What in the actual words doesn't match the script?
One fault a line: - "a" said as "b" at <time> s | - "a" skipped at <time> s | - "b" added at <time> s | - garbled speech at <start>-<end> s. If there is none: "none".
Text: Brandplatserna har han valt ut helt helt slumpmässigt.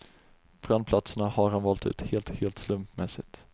none